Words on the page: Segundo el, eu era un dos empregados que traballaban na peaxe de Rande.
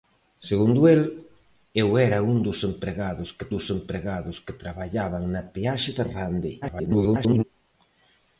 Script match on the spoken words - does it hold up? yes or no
no